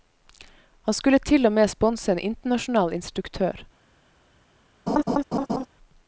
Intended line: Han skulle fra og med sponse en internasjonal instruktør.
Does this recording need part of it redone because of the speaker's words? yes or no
yes